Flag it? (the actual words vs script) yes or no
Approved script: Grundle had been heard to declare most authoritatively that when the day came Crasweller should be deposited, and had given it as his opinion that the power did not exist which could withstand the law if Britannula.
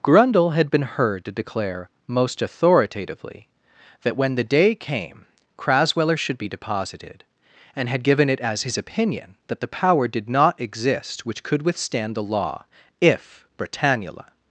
no